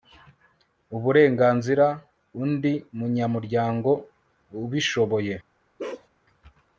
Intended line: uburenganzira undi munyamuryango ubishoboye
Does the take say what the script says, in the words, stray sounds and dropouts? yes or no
no